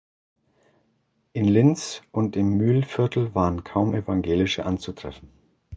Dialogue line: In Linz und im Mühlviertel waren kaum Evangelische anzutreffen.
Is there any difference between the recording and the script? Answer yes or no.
no